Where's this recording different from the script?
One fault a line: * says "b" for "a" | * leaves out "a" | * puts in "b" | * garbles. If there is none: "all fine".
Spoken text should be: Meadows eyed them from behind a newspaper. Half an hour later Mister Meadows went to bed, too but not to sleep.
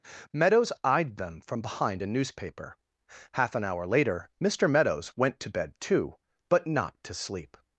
all fine